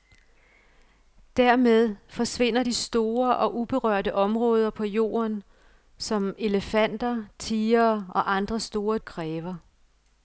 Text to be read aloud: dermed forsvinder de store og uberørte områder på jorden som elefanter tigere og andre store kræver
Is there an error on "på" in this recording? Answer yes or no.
no